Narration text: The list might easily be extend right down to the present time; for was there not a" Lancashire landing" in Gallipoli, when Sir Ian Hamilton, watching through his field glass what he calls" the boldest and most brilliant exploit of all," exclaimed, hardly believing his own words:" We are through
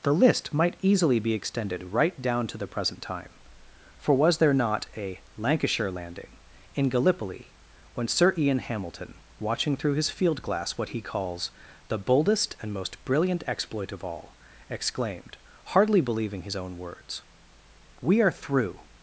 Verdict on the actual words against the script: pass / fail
fail